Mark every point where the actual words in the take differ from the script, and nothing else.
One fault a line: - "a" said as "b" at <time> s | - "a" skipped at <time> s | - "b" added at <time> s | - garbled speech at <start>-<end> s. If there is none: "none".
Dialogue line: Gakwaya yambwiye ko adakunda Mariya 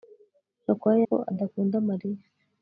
- "yambwiye" skipped at 1.0 s